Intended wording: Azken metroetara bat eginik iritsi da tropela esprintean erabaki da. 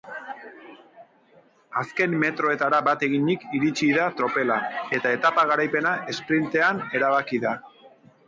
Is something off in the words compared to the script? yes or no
yes